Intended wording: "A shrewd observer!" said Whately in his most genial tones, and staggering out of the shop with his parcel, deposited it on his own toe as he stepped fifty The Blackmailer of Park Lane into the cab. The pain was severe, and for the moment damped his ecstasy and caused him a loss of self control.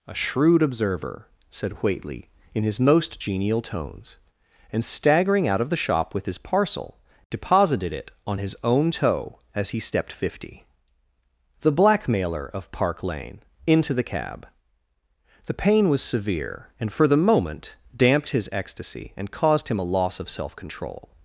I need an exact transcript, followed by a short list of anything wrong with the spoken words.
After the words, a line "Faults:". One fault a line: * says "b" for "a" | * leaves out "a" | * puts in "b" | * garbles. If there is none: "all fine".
"A shrewd observer!" said Whately in his most genial tones, and staggering out of the shop with his parcel, deposited it on his own toe as he stepped fifty The Blackmailer of Park Lane into the cab. The pain was severe, and for the moment damped his ecstasy and caused him a loss of self control.
Faults:
all fine